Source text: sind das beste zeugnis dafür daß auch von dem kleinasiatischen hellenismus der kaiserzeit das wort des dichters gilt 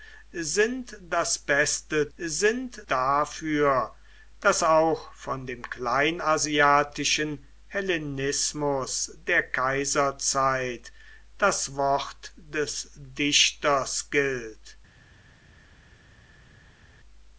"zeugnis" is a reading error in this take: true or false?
true